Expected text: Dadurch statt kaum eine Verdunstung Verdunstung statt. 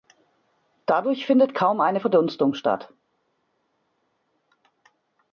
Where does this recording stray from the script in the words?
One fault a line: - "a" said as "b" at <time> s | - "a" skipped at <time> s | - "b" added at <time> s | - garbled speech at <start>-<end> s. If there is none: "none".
- "statt" said as "findet" at 1.3 s
- "Verdunstung" skipped at 2.5 s